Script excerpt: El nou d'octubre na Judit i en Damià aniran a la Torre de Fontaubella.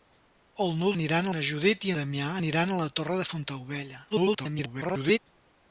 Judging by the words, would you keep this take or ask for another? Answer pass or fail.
fail